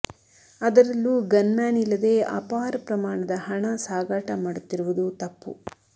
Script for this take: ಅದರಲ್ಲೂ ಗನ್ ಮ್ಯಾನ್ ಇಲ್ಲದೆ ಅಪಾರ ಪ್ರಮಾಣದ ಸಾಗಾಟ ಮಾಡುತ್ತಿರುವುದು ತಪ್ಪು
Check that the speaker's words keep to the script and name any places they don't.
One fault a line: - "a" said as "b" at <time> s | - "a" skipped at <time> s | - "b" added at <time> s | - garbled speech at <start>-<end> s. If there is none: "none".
- "ಹಣ" added at 3.5 s